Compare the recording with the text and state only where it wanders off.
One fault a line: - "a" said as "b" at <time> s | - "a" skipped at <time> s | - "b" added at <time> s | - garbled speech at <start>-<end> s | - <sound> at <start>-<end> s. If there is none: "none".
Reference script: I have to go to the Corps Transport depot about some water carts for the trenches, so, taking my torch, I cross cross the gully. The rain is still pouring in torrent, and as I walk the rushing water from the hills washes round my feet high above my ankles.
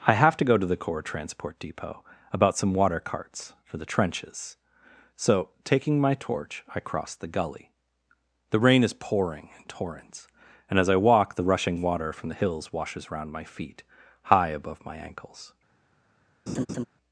- "cross" skipped at 7.1 s
- "still" skipped at 8.9 s
- "torrent" said as "torrents" at 9.7 s
- laugh at 16.5-16.8 s